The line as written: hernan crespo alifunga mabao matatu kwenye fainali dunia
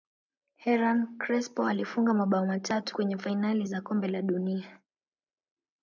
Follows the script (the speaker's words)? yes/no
no